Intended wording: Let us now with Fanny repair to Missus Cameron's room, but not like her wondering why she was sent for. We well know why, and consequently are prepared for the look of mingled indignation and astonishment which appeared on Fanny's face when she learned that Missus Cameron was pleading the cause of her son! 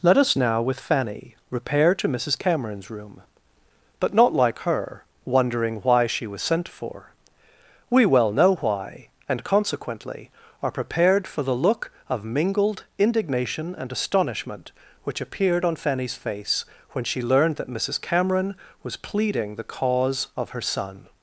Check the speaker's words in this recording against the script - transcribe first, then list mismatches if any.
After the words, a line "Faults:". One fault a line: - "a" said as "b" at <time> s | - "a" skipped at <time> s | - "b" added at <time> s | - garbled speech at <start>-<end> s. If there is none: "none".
Let us now with Fanny repair to Missus Cameron's room, but not like her wondering why she was sent for. We well know why, and consequently are prepared for the look of mingled indignation and astonishment which appeared on Fanny's face when she learned that Missus Cameron was pleading the cause of her son!
Faults:
none